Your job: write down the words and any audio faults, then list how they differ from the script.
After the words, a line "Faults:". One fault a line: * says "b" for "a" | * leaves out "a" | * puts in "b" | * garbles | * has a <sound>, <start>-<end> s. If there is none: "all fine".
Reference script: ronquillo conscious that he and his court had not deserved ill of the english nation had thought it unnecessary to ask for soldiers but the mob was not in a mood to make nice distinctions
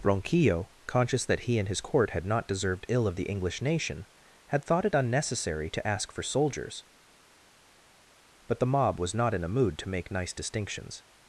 ronquillo conscious that he and his court had not deserved ill of the english nation had thought it unnecessary to ask for soldiers but the mob was not in a mood to make nice distinctions
Faults:
all fine